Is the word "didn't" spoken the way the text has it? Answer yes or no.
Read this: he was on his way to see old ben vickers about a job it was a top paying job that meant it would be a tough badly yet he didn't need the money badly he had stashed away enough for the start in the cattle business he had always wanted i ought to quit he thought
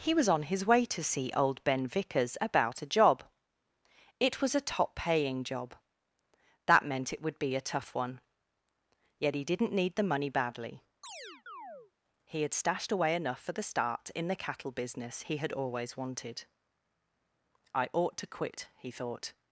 yes